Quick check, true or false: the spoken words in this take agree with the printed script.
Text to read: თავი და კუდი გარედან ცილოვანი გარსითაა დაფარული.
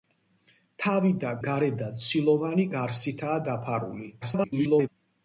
false